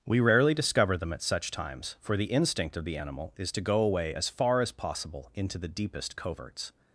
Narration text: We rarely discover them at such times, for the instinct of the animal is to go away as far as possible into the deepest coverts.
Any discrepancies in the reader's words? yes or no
no